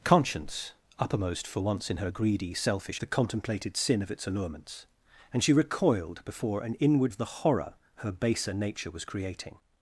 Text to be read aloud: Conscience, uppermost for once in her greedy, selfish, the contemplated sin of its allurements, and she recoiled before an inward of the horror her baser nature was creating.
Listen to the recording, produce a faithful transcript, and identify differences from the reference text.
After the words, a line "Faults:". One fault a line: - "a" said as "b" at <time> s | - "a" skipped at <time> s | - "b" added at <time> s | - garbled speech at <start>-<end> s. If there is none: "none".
Conscience, uppermost for once in her greedy, selfish, the contemplated sin of its allurements, and she recoiled before an inward of the horror her baser nature was creating.
Faults:
none